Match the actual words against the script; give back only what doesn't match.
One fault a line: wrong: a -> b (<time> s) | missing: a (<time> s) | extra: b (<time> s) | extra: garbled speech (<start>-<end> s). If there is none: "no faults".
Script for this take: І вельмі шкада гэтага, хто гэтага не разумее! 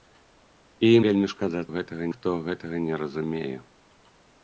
no faults